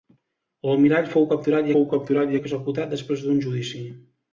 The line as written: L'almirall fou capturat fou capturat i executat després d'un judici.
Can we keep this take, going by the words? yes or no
yes